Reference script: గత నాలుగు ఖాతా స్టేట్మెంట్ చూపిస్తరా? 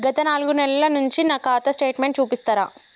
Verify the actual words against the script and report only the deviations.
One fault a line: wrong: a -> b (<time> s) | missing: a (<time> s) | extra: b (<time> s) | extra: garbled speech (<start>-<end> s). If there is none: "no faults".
extra: నెలల నుంచి నా (0.5 s)